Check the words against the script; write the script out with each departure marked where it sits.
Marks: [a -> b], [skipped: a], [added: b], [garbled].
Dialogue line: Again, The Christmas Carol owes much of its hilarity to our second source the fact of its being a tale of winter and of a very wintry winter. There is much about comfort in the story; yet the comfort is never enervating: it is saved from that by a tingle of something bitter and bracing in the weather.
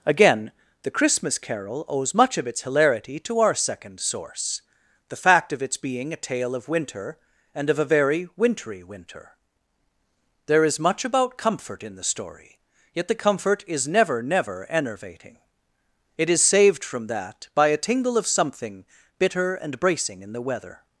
Again, The Christmas Carol owes much of its hilarity to our second source the fact of its being a tale of winter and of a very wintry winter. There is much about comfort in the story; yet the comfort is never [added: never] enervating: it is saved from that by a tingle of something bitter and bracing in the weather.